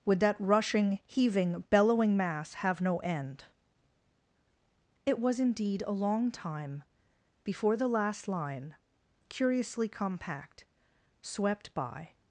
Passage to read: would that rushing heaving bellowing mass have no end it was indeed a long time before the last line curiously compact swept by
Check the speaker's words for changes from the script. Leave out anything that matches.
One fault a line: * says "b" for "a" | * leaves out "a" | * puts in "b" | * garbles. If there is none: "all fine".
all fine